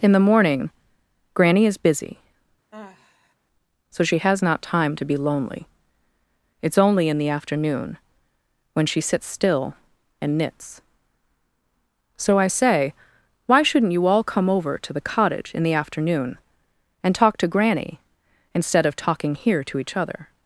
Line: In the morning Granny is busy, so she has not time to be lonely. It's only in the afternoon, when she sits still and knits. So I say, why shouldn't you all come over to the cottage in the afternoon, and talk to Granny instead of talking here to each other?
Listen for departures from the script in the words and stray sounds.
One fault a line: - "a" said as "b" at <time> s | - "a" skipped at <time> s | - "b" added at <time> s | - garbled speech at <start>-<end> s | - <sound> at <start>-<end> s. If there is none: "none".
- sigh at 2.7-3.3 s